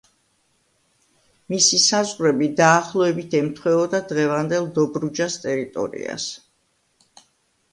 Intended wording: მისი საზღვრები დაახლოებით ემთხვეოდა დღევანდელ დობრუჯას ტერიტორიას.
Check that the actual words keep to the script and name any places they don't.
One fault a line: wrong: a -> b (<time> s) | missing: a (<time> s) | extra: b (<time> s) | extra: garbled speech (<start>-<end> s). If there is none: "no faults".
no faults